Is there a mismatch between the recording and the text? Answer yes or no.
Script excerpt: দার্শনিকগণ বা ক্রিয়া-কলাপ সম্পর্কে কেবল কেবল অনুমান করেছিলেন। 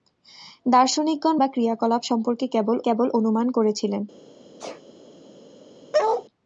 no